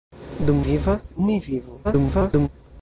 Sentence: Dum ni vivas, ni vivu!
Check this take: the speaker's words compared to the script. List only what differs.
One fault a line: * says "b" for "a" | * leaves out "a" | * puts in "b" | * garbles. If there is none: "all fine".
* leaves out "ni"
* garbles